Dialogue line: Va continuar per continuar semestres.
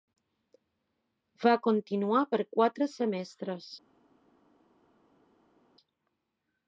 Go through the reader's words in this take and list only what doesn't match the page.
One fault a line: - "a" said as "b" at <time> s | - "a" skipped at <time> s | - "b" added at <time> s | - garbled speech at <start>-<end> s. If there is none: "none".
- "continuar" said as "quatre" at 2.6 s